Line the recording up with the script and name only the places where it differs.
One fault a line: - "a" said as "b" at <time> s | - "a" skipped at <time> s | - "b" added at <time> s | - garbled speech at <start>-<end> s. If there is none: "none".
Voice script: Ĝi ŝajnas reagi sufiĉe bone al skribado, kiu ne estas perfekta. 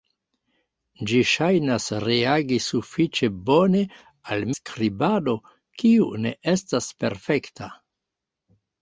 none